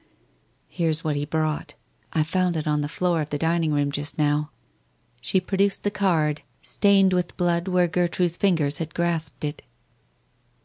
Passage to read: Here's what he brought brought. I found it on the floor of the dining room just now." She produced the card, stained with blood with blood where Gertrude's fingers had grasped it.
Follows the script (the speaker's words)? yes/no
no